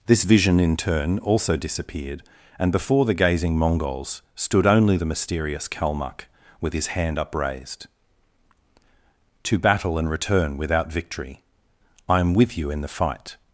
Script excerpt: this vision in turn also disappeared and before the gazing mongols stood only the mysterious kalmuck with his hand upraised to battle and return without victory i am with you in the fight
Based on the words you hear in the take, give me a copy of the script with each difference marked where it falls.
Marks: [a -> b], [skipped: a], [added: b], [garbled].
this vision in turn also disappeared and before the gazing mongols stood only the mysterious kalmuck with his hand upraised to battle and return without victory i am with you in the fight